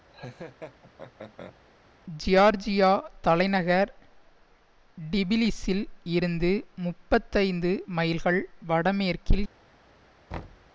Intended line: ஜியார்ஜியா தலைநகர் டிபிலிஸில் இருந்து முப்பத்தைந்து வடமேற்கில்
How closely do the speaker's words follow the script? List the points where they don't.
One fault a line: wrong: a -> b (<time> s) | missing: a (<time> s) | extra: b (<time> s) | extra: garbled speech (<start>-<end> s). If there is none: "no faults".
extra: மைல்கள் (7.9 s)